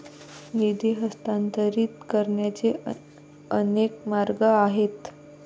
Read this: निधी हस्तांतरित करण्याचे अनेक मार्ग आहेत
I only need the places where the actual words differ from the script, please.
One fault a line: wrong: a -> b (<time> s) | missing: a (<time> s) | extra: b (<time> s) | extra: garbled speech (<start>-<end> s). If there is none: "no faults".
no faults